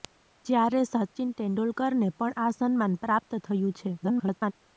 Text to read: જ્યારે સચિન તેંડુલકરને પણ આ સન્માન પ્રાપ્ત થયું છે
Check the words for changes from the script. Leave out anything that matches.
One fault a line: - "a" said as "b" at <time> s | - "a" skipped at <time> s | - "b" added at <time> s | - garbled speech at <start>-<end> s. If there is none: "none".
- garbled speech at 4.0-4.5 s